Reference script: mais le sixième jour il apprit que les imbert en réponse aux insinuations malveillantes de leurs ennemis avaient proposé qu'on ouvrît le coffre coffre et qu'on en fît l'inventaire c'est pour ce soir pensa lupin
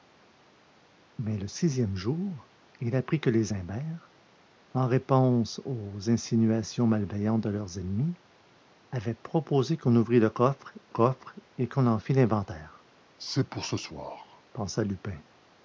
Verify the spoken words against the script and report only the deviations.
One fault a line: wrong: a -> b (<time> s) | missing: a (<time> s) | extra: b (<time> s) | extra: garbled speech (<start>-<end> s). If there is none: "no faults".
no faults